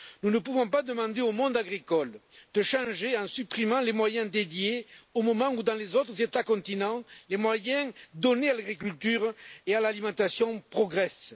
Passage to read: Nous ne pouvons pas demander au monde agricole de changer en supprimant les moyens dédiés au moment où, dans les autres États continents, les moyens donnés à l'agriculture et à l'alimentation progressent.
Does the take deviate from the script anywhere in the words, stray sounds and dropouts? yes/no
no